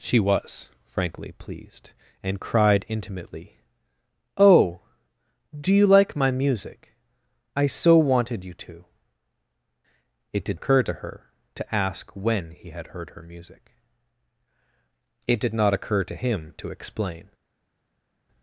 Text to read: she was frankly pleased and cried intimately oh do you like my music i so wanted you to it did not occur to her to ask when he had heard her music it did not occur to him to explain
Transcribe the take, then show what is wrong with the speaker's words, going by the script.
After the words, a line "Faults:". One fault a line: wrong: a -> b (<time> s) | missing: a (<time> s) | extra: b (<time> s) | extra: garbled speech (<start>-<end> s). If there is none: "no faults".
she was frankly pleased and cried intimately oh do you like my music i so wanted you to it did occur to her to ask when he had heard her music it did not occur to him to explain
Faults:
missing: not (10.6 s)